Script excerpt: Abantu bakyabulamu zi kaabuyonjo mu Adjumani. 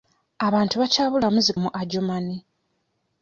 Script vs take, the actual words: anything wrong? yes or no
yes